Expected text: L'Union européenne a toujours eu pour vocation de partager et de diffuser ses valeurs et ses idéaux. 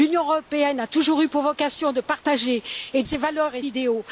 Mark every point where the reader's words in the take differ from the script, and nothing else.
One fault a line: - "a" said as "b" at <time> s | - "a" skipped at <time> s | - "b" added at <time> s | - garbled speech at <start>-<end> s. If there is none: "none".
- "de diffuser" skipped at 3.0 s
- "ses" skipped at 3.6 s